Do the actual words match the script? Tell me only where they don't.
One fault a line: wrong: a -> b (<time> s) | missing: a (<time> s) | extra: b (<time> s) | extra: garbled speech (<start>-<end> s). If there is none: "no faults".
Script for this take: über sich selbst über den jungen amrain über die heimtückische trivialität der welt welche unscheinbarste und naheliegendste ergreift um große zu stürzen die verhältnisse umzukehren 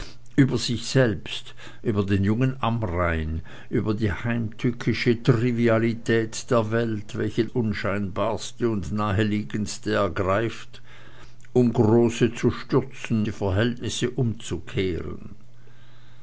no faults